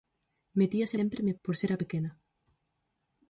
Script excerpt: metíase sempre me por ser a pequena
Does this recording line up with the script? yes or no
yes